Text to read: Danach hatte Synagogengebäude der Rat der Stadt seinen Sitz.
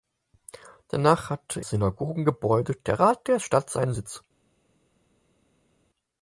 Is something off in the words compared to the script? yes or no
no